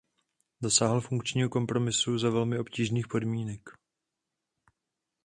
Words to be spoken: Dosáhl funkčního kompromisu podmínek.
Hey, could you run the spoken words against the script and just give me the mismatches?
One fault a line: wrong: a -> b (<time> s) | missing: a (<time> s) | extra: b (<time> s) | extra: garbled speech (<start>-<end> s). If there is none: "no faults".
extra: za velmi obtížných (2.2 s)